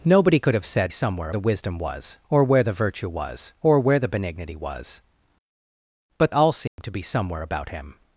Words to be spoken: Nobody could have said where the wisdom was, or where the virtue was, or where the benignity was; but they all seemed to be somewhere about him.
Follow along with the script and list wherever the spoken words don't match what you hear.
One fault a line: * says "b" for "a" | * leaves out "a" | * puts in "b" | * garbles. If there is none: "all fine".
* says "somewhere" for "where"
* leaves out "they"